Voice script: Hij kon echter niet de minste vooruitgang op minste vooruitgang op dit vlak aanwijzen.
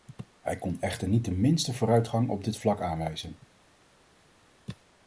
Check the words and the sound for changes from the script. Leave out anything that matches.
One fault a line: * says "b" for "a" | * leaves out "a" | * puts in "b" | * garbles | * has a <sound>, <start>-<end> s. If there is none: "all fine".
* leaves out "minste vooruitgang op"